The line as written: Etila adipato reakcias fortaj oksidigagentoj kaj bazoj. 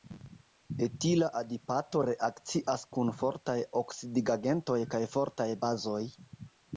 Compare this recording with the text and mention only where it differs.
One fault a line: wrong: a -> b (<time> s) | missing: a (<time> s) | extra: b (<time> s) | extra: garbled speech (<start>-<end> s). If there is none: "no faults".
extra: kun (3.0 s)
extra: fortaj (5.2 s)